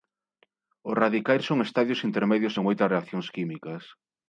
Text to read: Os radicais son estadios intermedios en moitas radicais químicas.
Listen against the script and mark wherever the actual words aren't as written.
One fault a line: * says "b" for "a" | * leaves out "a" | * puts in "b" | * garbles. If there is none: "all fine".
* says "reaccións" for "radicais"